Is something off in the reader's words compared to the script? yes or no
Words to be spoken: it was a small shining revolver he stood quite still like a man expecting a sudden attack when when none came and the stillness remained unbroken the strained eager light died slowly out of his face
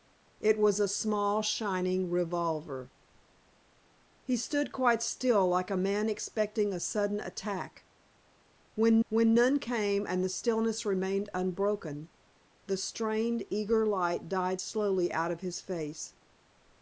no